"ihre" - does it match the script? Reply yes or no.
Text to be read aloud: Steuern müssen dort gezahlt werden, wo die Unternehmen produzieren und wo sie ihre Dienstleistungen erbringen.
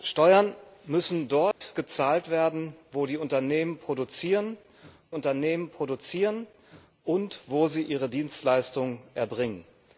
yes